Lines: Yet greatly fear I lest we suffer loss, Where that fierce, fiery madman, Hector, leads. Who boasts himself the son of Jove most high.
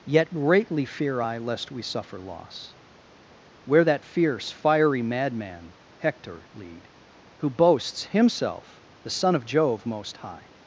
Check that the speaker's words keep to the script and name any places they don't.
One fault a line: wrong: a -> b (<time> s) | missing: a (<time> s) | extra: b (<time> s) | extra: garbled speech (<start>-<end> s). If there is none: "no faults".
wrong: leads -> lead (6.5 s)